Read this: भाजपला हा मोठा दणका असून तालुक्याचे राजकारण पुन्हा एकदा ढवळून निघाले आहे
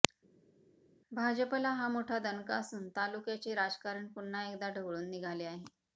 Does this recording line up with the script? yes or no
yes